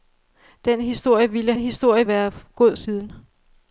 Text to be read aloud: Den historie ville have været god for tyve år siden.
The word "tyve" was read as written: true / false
false